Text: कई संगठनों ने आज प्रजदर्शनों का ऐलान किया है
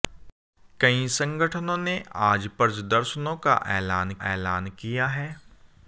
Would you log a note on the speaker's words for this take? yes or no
yes